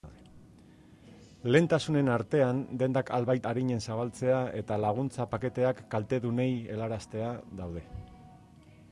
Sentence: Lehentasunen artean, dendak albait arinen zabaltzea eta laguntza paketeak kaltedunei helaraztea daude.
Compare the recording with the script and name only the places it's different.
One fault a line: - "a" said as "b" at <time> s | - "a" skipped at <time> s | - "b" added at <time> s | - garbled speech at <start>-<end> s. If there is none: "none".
none